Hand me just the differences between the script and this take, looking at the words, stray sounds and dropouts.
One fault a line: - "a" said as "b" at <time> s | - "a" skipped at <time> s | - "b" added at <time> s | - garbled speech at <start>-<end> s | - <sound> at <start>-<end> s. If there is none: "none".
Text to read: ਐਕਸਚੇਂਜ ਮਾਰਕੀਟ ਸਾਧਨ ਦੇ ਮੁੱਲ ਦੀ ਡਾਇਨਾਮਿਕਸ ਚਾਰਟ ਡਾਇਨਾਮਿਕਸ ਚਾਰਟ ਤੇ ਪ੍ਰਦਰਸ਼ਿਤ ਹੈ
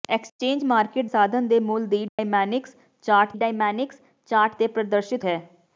- dropout at 2.1-2.2 s